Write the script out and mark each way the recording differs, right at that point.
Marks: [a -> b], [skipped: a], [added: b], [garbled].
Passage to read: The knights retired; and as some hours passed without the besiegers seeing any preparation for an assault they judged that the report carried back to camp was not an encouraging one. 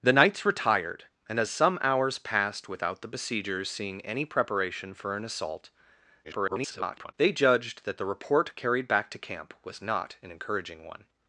The knights retired; and as some hours passed without the besiegers seeing any preparation for an assault [garbled] they judged that the report carried back to camp was not an encouraging one.